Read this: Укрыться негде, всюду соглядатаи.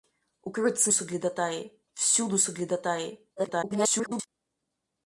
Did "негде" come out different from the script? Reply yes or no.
yes